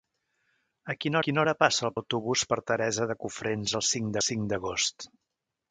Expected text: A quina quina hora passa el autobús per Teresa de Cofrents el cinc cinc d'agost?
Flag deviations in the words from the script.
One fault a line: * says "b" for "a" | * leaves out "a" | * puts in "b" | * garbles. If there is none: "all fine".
all fine